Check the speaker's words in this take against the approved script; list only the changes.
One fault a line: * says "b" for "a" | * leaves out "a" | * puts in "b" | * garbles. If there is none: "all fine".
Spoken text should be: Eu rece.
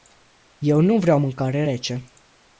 * puts in "nu vreau mâncare"